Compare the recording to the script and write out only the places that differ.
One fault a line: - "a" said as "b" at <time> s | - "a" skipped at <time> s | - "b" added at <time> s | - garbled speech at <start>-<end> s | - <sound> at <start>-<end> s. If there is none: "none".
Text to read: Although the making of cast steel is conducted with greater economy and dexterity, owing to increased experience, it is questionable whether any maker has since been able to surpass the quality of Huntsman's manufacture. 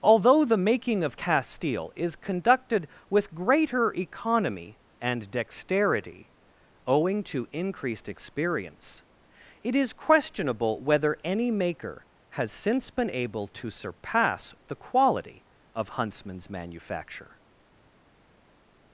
none